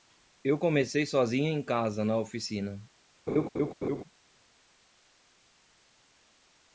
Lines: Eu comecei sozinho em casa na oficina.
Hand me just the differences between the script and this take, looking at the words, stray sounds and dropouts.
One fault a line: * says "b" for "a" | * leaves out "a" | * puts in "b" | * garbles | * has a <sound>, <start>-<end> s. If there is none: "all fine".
* has a laugh, 3.3-4.0 s